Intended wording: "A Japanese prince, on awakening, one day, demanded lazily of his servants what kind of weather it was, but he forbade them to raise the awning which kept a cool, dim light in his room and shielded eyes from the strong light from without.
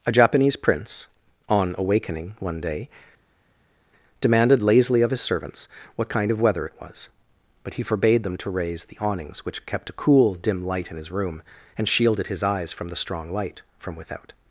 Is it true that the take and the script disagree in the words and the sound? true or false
true